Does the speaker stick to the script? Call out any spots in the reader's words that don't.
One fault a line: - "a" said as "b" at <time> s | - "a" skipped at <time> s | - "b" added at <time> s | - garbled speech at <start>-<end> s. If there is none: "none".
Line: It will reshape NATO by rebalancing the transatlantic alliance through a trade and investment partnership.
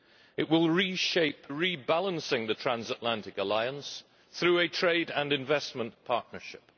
- "NATO by" skipped at 1.5 s